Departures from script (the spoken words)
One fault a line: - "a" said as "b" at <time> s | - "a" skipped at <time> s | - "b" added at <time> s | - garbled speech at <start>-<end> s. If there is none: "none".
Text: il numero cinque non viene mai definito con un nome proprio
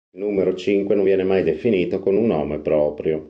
none